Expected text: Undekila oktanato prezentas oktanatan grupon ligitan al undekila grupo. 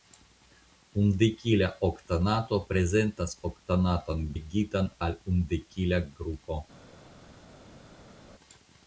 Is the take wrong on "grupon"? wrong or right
wrong